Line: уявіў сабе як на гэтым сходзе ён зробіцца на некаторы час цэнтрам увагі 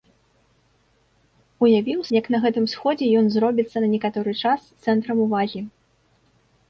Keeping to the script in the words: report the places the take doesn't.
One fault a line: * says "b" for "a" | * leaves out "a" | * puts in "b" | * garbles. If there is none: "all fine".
* leaves out "сабе"